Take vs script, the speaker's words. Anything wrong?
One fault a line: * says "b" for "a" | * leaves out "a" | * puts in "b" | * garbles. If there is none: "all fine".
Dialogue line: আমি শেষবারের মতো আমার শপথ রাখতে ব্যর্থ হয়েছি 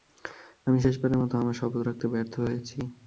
all fine